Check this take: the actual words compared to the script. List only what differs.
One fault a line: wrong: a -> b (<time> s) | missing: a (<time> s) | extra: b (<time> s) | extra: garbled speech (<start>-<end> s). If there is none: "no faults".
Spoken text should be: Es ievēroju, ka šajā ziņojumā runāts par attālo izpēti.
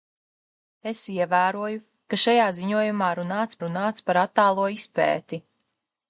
extra: runāts (3.7 s)